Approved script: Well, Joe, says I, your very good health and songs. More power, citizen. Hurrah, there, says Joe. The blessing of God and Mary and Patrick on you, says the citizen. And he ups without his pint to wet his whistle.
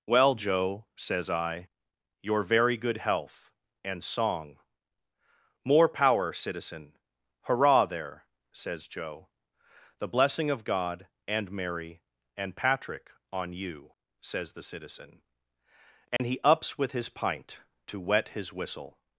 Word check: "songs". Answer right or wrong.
wrong